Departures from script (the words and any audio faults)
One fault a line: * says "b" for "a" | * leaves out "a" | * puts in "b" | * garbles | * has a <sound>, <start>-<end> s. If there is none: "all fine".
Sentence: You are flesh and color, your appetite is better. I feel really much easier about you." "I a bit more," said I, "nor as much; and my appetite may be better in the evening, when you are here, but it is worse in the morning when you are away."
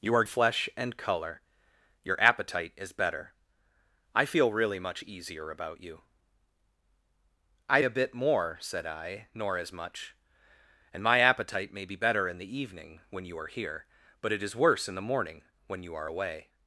all fine